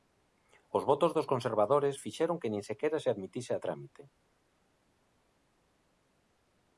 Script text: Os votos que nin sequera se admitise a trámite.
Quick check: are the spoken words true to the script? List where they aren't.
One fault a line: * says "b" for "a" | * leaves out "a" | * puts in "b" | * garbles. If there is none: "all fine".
* puts in "dos conservadores fixeron"